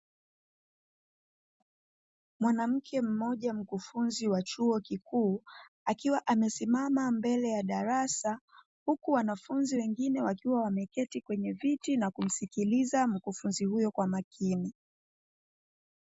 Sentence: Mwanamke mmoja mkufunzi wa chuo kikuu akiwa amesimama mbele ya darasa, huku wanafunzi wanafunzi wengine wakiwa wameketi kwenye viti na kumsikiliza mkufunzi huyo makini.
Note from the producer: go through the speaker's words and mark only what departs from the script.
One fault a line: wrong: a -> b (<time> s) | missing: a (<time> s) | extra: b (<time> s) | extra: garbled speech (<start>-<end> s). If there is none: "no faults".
missing: wanafunzi (9.8 s)
extra: kwa (13.9 s)